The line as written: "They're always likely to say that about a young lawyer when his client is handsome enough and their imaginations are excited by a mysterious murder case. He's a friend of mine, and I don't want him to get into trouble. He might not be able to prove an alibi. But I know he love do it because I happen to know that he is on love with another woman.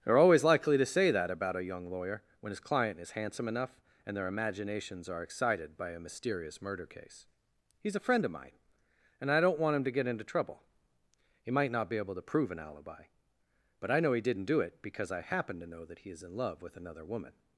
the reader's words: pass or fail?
fail